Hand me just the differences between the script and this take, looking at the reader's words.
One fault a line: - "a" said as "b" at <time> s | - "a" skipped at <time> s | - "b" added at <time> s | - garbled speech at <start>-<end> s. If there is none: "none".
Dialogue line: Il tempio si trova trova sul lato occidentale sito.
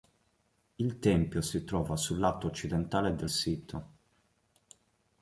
- "trova" skipped at 1.9 s
- "del" added at 3.1 s